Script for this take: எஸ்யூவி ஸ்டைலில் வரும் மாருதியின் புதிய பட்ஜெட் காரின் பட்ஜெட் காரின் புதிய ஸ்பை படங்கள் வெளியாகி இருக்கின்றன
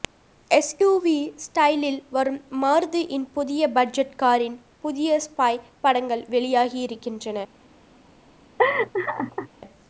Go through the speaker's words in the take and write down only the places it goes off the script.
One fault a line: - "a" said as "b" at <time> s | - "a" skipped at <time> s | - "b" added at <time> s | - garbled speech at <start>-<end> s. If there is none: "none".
- "பட்ஜெட் காரின்" skipped at 4.6 s